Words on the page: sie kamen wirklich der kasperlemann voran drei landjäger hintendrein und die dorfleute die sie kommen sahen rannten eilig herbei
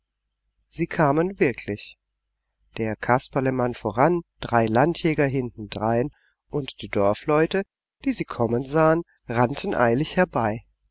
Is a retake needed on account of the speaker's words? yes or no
no